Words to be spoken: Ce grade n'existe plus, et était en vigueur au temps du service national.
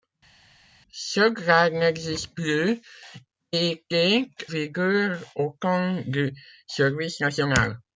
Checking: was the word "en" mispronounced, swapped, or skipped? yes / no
yes